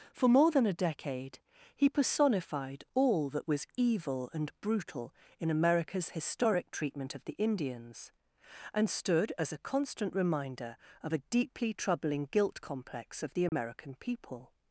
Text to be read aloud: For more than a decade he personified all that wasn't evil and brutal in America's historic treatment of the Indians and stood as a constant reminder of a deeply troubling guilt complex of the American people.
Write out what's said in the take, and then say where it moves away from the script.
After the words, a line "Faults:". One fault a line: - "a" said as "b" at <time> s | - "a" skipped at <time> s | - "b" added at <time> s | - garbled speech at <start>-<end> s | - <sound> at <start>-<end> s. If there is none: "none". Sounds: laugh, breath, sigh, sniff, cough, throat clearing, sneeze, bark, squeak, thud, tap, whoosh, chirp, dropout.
For more than a decade he personified all that was evil and brutal in America's historic treatment of the Indians and stood as a constant reminder of a deeply troubling guilt complex of the American people.
Faults:
- "wasn't" said as "was" at 3.5 s
- dropout at 13.5-13.5 s